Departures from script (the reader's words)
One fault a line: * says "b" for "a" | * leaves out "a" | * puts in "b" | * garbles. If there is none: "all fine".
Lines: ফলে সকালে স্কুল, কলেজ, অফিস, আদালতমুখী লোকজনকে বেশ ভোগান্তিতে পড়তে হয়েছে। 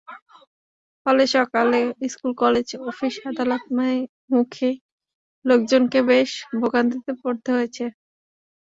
all fine